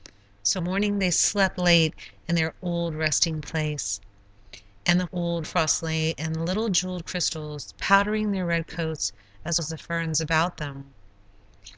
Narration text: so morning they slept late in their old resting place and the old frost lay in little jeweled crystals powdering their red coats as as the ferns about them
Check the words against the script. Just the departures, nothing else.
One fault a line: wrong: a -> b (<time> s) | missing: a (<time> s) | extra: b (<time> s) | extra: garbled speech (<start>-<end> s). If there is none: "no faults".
no faults